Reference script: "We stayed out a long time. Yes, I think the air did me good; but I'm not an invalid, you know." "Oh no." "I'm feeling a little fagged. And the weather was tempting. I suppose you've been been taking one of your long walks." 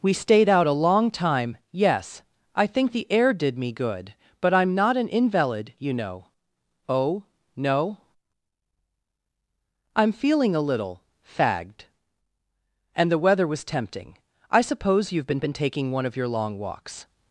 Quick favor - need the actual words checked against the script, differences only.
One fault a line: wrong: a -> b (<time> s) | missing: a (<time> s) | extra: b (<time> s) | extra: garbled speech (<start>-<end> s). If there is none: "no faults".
no faults